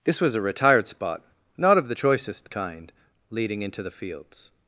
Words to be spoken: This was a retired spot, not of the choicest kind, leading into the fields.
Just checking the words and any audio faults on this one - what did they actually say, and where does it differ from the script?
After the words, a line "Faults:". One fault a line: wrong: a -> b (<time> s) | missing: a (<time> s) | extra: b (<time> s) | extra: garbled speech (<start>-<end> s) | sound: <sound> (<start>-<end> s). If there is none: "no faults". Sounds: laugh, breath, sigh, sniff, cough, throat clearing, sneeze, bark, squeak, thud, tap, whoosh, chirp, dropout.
This was a retired spot, not of the choicest kind, leading into the fields.
Faults:
no faults